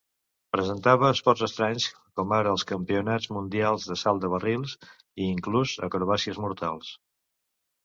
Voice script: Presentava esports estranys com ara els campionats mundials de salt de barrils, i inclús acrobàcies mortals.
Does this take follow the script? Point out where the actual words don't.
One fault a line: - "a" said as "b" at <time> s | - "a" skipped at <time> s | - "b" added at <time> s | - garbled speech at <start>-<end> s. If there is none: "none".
none